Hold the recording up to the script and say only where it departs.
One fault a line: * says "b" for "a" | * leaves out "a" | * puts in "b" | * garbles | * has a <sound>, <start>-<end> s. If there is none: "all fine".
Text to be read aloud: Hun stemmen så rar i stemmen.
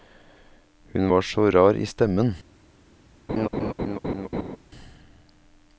* says "var" for "stemmen"
* has a laugh, 3.3-4.6 s